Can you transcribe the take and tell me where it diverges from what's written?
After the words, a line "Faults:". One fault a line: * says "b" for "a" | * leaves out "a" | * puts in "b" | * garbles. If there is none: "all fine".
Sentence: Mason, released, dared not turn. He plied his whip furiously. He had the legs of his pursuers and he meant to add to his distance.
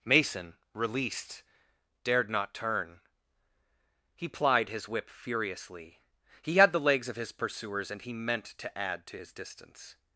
Mason, released, dared not turn. He plied his whip furiously. He had the legs of his pursuers and he meant to add to his distance.
Faults:
all fine